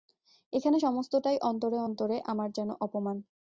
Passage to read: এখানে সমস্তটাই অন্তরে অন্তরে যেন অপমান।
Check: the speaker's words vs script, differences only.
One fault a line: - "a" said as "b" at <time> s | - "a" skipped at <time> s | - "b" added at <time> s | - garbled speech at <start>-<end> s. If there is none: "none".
- "আমার" added at 2.3 s